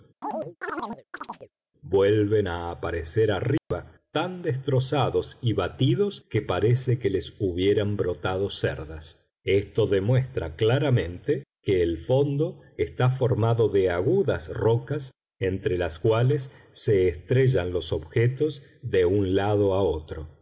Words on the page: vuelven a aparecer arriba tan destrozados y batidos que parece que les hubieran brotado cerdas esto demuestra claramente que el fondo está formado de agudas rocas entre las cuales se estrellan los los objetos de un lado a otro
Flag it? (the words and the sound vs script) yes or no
yes